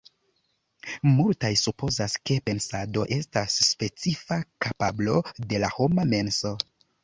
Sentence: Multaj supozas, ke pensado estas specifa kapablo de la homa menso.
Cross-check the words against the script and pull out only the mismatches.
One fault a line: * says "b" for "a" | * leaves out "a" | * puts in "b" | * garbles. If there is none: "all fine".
all fine